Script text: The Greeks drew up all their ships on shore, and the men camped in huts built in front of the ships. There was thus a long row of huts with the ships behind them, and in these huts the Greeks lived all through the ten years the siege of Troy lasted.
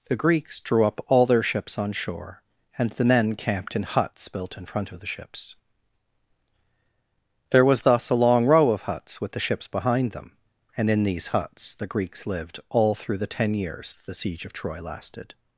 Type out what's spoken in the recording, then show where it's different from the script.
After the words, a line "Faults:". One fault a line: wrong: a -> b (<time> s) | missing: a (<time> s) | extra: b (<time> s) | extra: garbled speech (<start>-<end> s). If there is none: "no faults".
The Greeks drew up all their ships on shore, and the men camped in huts built in front of the ships. There was thus a long row of huts with the ships behind them, and in these huts the Greeks lived all through the ten years the siege of Troy lasted.
Faults:
no faults